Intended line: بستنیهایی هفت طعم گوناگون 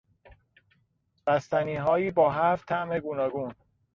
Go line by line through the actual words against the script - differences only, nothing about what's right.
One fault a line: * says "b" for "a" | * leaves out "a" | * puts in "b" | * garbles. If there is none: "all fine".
* puts in "با"